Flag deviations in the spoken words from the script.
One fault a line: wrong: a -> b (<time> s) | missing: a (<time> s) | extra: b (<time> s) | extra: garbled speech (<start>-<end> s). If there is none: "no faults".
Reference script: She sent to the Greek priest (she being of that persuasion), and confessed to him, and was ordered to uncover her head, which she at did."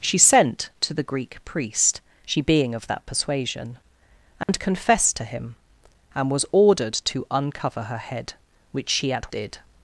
no faults